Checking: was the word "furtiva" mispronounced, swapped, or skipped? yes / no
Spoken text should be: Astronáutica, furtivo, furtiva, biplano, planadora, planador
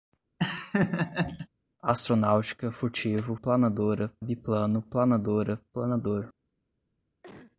yes